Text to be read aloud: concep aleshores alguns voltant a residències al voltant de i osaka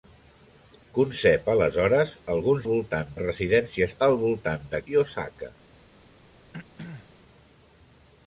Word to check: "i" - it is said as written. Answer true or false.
true